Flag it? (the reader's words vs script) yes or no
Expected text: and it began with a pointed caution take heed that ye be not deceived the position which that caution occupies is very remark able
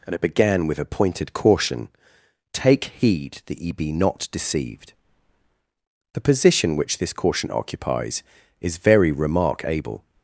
yes